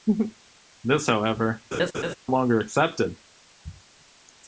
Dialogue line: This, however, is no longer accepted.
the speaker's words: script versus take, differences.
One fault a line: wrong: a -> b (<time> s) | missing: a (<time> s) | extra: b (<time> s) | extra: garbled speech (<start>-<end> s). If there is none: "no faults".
missing: is no (1.6 s)